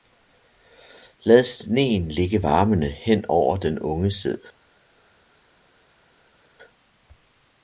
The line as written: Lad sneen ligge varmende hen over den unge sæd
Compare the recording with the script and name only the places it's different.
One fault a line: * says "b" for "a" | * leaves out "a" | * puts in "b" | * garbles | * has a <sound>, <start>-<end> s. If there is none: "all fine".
all fine